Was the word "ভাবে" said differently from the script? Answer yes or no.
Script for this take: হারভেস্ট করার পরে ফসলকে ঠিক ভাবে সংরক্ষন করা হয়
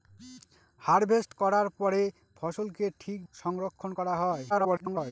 yes